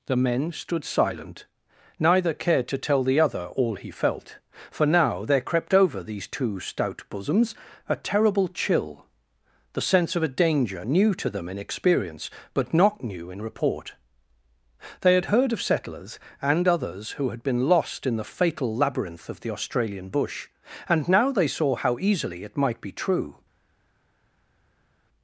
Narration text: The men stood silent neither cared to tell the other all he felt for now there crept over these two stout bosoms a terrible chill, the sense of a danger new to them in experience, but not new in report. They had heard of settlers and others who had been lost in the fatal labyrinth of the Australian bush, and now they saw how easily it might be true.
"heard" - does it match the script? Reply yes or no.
yes